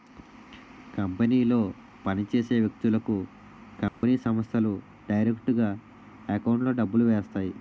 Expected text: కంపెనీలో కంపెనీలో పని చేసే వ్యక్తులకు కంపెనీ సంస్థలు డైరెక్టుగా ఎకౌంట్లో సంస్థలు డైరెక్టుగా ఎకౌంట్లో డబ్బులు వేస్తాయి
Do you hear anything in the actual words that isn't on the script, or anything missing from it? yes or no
yes